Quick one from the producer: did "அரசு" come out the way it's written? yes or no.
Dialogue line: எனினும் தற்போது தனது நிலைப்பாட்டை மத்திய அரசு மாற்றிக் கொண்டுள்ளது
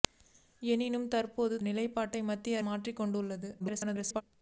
no